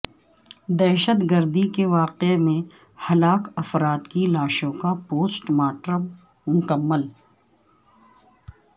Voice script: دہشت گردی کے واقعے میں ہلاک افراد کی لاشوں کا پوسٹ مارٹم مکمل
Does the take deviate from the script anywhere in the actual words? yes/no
no